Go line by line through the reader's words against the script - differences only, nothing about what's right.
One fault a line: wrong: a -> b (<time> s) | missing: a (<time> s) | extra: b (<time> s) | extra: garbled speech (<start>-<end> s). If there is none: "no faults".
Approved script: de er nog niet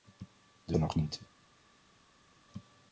no faults